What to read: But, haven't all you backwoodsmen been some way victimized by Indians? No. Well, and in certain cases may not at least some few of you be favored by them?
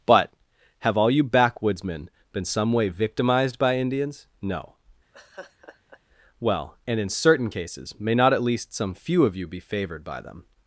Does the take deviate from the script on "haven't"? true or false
true